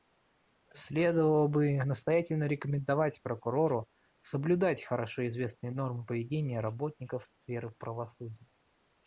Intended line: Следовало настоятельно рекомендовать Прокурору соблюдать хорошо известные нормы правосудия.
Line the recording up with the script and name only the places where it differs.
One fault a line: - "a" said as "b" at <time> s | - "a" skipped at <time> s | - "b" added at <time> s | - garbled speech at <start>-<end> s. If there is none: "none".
- "бы" added at 1.5 s
- "поведения работников сферы" added at 6.0 s